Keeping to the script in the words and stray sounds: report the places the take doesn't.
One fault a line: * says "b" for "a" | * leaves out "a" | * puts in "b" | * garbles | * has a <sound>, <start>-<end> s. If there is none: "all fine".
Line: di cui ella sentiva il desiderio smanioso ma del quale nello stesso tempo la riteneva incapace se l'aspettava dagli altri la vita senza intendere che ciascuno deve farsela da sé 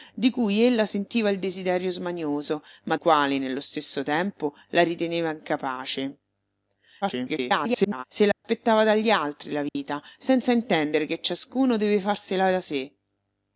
* leaves out "del"
* garbles
* has a dropout, 8.3-8.4 s
* has a dropout, 9.7-9.8 s